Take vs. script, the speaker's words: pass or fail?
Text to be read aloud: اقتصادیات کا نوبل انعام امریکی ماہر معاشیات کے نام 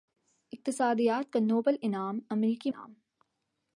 fail